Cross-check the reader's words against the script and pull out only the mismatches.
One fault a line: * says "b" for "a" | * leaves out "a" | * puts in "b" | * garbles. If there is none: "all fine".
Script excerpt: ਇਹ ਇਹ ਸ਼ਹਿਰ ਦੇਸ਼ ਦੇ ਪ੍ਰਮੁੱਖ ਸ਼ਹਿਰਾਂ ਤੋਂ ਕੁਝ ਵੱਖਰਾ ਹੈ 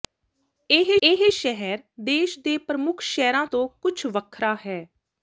all fine